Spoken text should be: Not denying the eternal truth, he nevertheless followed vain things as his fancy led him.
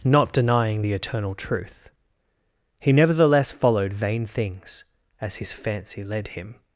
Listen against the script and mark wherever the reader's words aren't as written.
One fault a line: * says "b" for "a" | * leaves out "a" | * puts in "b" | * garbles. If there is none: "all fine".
all fine